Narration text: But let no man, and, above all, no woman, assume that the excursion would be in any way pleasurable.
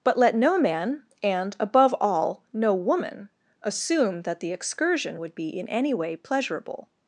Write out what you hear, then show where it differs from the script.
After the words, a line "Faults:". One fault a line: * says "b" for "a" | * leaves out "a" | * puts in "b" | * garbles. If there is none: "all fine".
But let no man, and, above all, no woman, assume that the excursion would be in any way pleasurable.
Faults:
all fine